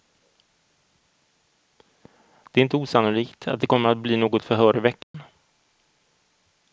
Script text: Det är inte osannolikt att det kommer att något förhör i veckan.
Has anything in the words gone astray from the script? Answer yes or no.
yes